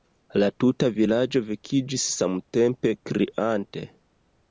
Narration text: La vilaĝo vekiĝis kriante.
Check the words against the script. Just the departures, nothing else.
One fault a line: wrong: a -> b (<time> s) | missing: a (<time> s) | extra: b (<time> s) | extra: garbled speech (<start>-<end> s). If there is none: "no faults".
extra: tuta (0.6 s)
extra: samtempe (2.2 s)